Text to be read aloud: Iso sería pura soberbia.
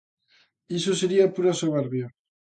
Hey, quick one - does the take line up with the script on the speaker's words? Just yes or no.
yes